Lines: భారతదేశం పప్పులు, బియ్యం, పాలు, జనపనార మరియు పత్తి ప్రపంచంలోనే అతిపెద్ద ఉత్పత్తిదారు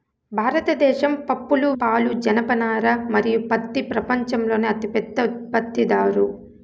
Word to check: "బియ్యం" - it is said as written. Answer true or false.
false